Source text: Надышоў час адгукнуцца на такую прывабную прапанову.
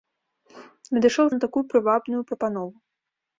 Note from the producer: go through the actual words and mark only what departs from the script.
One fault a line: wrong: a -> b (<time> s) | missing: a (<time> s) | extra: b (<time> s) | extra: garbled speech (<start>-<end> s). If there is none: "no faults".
missing: час адгукнуцца (1.3 s)